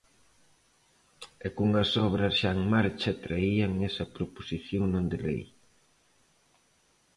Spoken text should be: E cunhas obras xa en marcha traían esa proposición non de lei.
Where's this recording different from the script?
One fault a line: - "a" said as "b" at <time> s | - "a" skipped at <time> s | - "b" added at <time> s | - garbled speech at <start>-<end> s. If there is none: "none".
none